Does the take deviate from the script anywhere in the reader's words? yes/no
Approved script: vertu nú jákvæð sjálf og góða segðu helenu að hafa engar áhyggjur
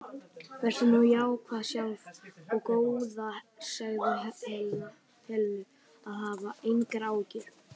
no